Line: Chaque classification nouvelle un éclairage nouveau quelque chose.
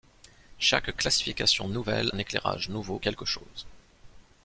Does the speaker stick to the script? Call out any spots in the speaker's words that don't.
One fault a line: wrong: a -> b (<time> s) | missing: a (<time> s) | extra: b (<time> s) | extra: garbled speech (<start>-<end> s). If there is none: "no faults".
no faults